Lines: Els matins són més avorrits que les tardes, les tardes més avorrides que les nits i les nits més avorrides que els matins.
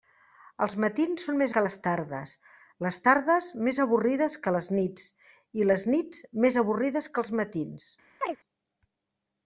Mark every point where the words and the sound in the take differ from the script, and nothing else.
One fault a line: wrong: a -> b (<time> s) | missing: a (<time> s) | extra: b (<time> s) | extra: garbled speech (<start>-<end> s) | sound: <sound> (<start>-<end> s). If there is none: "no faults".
missing: avorrits (1.5 s)
sound: chirp (8.2-8.4 s)